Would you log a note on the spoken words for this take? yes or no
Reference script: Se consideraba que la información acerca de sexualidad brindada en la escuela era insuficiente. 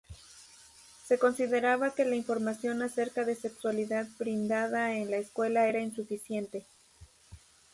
no